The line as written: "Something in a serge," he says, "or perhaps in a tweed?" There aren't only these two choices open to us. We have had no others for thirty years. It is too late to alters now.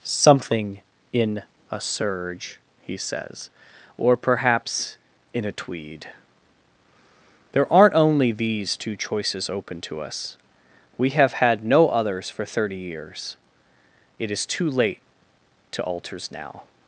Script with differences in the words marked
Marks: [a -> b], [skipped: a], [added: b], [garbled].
"Something in a serge," he says, "or perhaps in a tweed?" There aren't only these two choices open to us. We have had no others for thirty years. It is too late to alters now.